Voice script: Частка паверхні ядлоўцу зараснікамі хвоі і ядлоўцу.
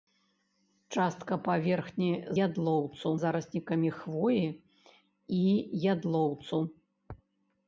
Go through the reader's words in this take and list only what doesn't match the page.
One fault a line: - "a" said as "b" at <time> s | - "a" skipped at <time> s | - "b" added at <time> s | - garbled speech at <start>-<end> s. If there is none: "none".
none